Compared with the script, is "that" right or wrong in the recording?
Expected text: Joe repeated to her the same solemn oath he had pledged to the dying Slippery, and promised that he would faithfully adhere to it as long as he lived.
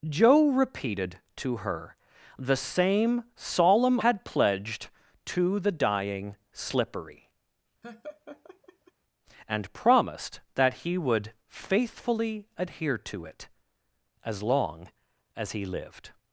right